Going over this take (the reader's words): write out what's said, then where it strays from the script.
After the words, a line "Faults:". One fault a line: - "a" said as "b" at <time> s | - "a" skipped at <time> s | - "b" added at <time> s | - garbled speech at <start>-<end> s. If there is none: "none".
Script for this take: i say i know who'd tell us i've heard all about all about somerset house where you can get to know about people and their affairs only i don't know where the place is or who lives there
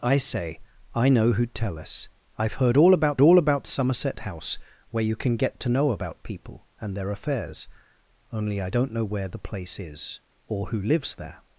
i say i know who'd tell us i've heard all about all about somerset house where you can get to know about people and their affairs only i don't know where the place is or who lives there
Faults:
none